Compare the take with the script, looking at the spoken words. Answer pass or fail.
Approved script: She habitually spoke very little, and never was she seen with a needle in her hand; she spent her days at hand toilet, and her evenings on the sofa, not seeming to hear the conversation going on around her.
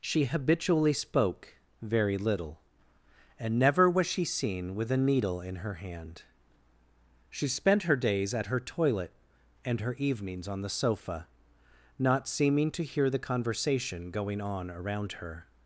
fail